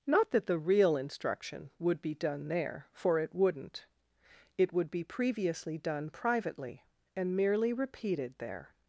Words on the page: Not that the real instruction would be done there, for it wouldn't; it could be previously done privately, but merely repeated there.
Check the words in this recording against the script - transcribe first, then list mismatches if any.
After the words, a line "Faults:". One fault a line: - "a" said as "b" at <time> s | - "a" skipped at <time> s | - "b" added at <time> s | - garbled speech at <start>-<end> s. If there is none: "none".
Not that the real instruction would be done there, for it wouldn't; it would be previously done privately, and merely repeated there.
Faults:
- "could" said as "would" at 4.7 s
- "but" said as "and" at 7.2 s